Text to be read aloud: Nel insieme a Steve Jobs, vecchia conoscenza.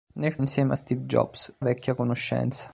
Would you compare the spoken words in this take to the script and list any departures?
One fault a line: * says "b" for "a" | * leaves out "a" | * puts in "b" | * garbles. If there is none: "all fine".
all fine